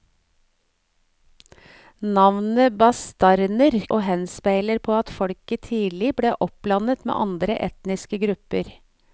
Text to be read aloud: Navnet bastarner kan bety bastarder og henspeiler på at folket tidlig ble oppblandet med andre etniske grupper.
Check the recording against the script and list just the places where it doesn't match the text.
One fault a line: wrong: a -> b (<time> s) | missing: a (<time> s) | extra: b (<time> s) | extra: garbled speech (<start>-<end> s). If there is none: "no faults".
missing: kan bety bastarder (3.8 s)